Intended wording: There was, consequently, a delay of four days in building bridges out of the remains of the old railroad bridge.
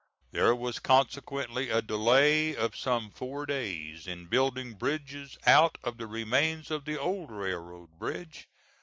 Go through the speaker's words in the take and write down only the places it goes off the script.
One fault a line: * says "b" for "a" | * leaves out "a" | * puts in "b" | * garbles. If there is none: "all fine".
* puts in "some"